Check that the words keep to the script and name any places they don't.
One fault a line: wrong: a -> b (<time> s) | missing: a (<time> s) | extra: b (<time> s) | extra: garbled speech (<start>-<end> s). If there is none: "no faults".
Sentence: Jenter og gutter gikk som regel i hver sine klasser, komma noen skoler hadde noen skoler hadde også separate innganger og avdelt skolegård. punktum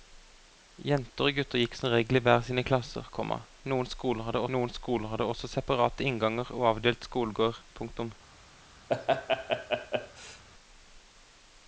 no faults